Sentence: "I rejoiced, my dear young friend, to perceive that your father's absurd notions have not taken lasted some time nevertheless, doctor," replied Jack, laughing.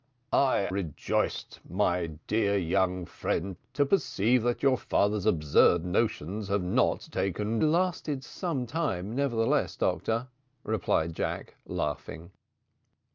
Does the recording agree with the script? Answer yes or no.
yes